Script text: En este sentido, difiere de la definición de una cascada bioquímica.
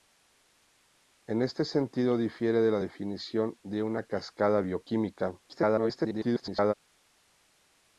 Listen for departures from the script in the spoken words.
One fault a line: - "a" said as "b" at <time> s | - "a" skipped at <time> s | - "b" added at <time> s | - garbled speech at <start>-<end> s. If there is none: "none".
- garbled speech at 5.4-6.7 s